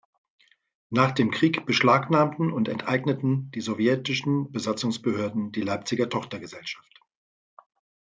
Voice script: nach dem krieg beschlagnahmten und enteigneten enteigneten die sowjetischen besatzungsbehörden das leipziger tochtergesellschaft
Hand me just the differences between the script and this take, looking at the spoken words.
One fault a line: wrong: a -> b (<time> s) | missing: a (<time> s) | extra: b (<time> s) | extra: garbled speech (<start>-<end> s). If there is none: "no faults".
missing: enteigneten (3.5 s)
wrong: das -> die (5.5 s)